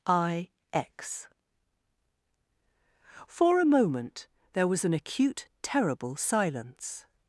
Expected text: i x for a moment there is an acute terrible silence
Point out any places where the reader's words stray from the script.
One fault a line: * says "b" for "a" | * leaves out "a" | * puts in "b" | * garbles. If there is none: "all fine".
* says "was" for "is"